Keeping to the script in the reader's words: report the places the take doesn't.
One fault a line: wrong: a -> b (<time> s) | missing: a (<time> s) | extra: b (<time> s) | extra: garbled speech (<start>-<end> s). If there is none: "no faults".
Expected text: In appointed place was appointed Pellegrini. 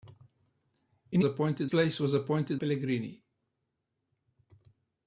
no faults